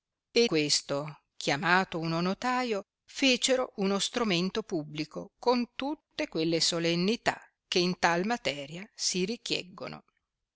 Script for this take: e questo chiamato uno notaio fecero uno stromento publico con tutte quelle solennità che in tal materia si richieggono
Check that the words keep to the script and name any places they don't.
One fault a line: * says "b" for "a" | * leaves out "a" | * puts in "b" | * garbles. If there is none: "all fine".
all fine